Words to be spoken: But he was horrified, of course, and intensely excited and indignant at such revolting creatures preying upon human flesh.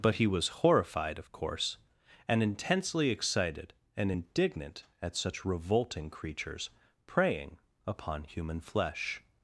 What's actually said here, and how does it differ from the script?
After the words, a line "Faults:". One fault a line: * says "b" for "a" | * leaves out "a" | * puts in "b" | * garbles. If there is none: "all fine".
But he was horrified, of course, and intensely excited and indignant at such revolting creatures preying upon human flesh.
Faults:
all fine